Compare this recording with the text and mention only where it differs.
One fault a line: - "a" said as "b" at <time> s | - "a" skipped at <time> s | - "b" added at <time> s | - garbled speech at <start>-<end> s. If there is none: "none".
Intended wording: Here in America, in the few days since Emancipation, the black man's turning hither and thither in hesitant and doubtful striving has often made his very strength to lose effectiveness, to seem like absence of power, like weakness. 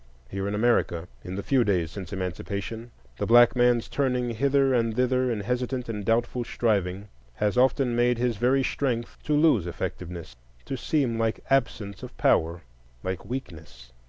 none